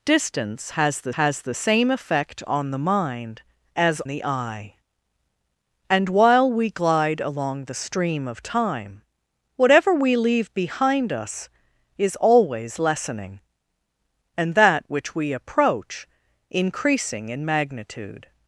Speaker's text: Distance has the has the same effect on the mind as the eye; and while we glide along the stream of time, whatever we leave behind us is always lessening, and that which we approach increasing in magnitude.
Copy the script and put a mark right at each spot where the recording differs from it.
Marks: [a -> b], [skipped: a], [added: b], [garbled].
Distance has the has the same effect on the mind as the eye; and while we glide along the stream of time, whatever we leave behind us is always lessening, and that which we approach increasing in magnitude.